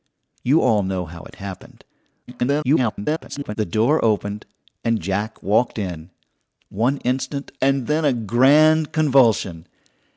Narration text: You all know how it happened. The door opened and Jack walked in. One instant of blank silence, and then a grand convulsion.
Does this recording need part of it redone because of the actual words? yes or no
yes